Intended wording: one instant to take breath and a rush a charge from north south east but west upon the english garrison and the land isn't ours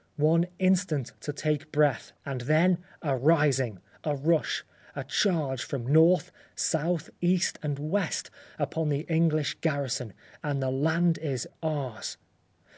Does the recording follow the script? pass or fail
fail